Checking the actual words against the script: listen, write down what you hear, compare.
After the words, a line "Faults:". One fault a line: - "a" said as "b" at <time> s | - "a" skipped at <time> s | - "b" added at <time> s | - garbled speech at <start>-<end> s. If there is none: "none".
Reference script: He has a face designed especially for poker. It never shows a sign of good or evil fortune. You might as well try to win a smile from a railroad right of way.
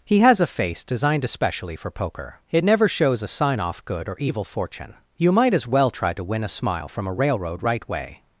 He has a face designed especially for poker. It never shows a sign off good or evil fortune. You might as well try to win a smile from a railroad right way.
Faults:
- "of" said as "off" at 3.6 s
- "of" skipped at 7.9 s